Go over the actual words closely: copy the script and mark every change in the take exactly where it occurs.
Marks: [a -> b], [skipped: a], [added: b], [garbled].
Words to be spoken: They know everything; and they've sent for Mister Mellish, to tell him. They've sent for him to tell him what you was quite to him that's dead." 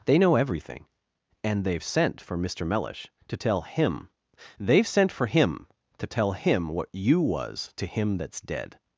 They know everything; and they've sent for Mister Mellish, to tell him. They've sent for him to tell him what you was [skipped: quite] to him that's dead."